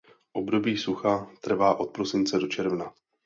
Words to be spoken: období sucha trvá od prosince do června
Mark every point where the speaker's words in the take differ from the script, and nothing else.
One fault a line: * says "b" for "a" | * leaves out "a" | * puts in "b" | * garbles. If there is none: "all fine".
all fine